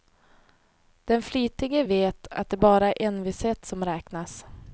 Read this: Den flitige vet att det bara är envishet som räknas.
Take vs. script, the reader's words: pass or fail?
pass